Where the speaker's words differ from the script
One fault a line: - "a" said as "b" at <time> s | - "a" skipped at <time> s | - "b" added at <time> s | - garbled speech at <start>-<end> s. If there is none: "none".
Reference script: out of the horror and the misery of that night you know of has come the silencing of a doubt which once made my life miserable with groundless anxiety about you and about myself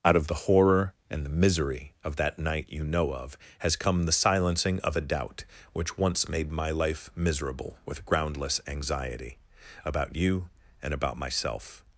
none